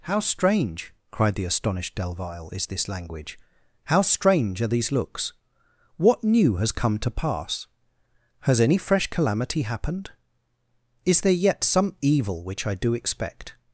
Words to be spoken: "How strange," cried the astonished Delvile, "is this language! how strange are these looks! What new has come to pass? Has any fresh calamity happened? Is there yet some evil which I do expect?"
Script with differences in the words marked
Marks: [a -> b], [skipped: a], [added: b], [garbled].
"How strange," cried the astonished Delvile, "is this language! how strange are these looks! What new has come to pass? Has any fresh calamity happened? Is there yet some evil which I do expect?"